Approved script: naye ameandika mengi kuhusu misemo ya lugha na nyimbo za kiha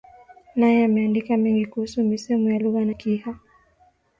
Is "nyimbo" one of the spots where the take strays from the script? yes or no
yes